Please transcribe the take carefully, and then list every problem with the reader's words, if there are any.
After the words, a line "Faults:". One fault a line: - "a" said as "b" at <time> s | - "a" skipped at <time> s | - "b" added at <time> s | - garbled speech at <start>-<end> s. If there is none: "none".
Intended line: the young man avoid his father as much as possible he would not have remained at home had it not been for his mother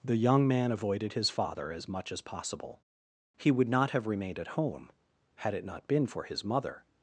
the young man avoided his father as much as possible he would not have remained at home had it not been for his mother
Faults:
- "avoid" said as "avoided" at 0.7 s